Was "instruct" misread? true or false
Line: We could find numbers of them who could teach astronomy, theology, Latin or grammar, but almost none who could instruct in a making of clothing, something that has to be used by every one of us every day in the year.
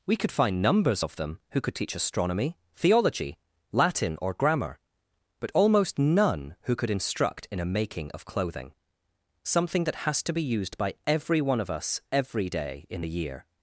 false